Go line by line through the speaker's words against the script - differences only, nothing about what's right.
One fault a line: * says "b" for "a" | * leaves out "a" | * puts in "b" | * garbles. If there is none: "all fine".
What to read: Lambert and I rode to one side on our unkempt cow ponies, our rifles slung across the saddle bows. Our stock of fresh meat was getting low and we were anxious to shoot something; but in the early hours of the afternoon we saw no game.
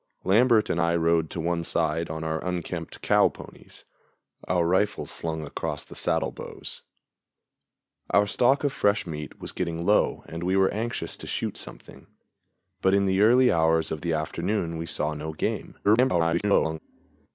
* garbles